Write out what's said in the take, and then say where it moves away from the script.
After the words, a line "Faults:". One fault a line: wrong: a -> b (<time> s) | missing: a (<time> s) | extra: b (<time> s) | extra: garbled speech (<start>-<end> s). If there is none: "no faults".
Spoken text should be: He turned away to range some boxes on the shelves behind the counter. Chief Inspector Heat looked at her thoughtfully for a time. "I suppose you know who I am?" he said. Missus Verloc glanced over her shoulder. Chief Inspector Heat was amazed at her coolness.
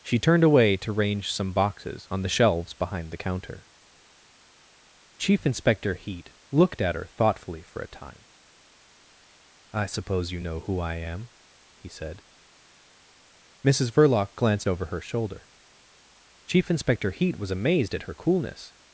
She turned away to range some boxes on the shelves behind the counter. Chief Inspector Heat looked at her thoughtfully for a time. "I suppose you know who I am?" he said. Missus Verloc glanced over her shoulder. Chief Inspector Heat was amazed at her coolness.
Faults:
wrong: He -> She (0.0 s)